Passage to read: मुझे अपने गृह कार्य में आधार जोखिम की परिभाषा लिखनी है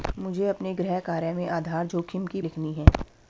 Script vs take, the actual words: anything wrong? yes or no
yes